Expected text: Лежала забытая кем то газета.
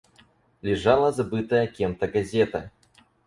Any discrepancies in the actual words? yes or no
no